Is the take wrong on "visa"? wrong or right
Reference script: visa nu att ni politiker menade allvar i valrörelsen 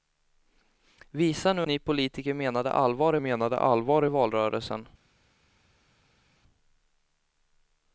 right